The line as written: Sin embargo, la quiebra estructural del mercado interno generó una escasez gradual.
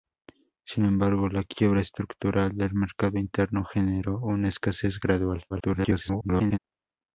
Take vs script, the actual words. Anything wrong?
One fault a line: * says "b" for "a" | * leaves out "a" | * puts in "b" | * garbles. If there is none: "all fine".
* garbles